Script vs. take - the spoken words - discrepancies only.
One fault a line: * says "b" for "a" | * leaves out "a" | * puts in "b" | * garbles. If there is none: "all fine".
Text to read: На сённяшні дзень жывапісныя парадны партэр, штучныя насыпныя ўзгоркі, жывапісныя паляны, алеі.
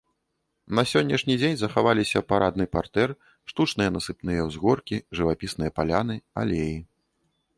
* says "захаваліся" for "жывапісныя"